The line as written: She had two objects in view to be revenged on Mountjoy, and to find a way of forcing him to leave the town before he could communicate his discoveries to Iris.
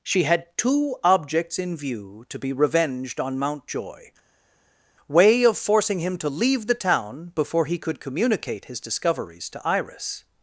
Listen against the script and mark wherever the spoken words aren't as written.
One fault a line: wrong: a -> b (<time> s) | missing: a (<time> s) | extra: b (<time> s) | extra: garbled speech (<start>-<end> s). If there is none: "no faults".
missing: and to find a (4.1 s)